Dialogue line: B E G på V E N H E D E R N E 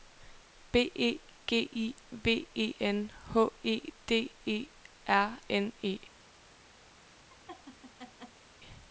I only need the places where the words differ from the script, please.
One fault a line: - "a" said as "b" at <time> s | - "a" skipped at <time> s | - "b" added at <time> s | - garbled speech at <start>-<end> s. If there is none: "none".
- "på" said as "I" at 1.7 s